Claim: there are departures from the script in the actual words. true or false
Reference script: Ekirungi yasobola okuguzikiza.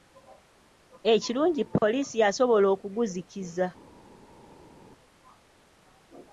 true